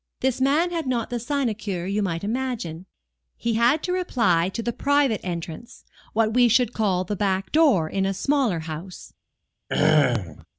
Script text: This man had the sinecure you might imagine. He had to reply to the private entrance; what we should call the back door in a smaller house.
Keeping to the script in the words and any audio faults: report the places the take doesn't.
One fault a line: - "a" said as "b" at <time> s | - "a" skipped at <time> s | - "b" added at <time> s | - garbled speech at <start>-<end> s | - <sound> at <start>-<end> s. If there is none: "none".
- "not" added at 0.9 s
- throat clearing at 9.7-10.5 s